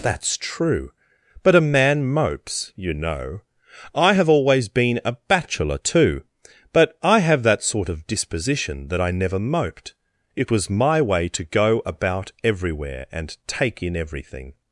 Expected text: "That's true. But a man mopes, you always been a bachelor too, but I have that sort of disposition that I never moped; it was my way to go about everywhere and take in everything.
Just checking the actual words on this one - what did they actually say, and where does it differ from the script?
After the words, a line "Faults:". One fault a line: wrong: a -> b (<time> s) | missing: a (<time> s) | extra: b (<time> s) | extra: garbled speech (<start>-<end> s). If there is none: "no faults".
"That's true. But a man mopes, you know. I have always been a bachelor too, but I have that sort of disposition that I never moped; it was my way to go about everywhere and take in everything.
Faults:
extra: know I have (2.9 s)